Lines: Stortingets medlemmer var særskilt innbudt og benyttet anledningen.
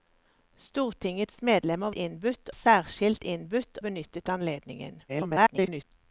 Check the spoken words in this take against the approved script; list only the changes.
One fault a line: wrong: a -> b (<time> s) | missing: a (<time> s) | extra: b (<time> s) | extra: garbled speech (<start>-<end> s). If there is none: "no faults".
wrong: var -> innbudt (1.9 s)
missing: og (3.8 s)
extra: garbled speech (5.1-5.8 s)